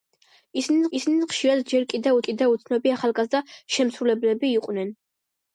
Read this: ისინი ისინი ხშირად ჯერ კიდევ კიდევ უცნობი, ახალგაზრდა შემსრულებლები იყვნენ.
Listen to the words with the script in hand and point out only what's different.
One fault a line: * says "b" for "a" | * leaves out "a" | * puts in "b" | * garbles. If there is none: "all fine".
all fine